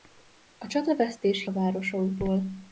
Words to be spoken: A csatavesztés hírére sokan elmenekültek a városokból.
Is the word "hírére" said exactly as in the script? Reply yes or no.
no